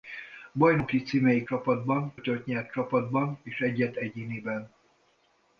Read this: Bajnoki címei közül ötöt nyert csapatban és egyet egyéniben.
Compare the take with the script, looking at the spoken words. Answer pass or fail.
fail